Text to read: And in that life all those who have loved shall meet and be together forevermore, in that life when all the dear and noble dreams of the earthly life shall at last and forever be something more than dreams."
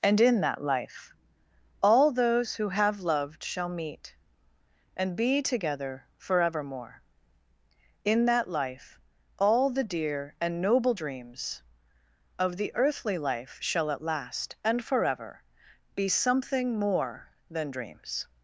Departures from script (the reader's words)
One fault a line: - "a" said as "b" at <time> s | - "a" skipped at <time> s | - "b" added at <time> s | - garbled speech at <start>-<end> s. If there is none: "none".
- "when" skipped at 9.0 s